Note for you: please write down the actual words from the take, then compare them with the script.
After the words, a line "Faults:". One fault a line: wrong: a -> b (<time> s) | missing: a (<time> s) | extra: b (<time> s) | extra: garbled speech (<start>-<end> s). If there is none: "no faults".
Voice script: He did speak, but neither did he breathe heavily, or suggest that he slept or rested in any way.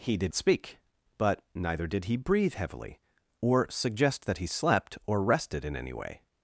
He did speak, but neither did he breathe heavily, or suggest that he slept or rested in any way.
Faults:
no faults